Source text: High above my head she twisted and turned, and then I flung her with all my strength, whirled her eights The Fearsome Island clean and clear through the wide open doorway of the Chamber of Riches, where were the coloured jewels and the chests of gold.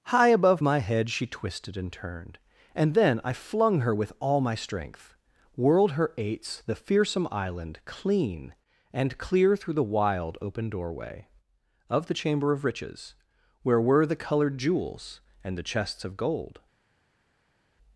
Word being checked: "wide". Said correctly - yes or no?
no